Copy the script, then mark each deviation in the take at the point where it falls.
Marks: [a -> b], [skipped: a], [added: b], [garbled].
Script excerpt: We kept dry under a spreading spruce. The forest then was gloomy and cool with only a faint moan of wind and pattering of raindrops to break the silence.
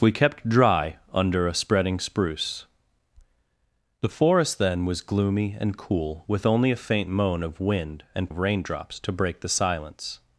We kept dry under a spreading spruce. The forest then was gloomy and cool with only a faint moan of wind and [skipped: pattering] of raindrops to break the silence.